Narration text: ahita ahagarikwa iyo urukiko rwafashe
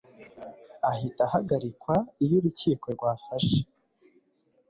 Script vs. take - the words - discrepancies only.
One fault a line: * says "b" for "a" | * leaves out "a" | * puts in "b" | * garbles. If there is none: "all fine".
all fine